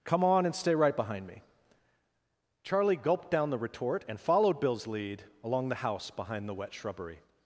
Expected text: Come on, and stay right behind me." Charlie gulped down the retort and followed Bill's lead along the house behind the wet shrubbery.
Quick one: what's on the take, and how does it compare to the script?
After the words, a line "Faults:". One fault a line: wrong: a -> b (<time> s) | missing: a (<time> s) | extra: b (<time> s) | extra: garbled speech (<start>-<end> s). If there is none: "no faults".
Come on, and stay right behind me." Charlie gulped down the retort and followed Bill's lead along the house behind the wet shrubbery.
Faults:
no faults